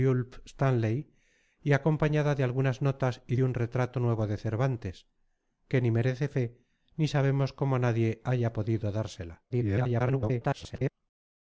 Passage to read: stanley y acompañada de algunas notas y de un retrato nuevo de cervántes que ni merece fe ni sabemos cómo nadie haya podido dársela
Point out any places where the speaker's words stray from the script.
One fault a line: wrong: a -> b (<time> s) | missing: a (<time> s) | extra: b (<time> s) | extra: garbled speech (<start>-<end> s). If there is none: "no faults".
extra: garbled speech (9.5-10.9 s)